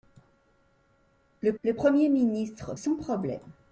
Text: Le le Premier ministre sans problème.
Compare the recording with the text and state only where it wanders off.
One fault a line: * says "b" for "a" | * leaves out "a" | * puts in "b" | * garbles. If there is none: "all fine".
all fine